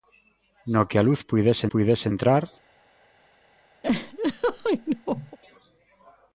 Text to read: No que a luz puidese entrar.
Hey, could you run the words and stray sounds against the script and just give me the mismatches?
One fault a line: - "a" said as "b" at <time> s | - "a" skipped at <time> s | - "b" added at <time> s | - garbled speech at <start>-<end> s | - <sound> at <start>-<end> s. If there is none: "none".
- "puidese" added at 1.6 s
- laugh at 3.8-5.4 s